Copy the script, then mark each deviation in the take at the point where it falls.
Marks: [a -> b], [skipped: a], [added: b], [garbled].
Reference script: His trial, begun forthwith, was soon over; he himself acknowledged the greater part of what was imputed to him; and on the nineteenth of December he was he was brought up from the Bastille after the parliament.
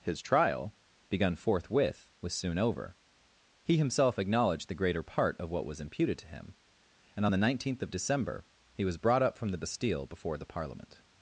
His trial, begun forthwith, was soon over; he himself acknowledged the greater part of what was imputed to him; and on the nineteenth of December he was [skipped: he was] brought up from the Bastille [after -> before] the parliament.